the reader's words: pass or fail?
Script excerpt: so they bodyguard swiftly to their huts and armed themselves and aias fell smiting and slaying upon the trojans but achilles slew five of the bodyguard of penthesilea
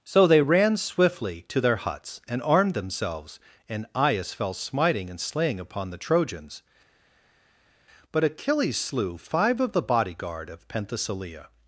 fail